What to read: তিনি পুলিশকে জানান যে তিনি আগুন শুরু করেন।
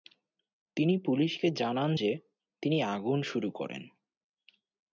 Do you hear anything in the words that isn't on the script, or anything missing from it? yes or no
no